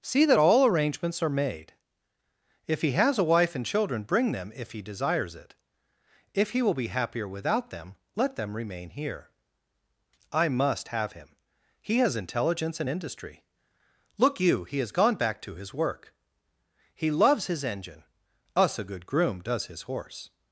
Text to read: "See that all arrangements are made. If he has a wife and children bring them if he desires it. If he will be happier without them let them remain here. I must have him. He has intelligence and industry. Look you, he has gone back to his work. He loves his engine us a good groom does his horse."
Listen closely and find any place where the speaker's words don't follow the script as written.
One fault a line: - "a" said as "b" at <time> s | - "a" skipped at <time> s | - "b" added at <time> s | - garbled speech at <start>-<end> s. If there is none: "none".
none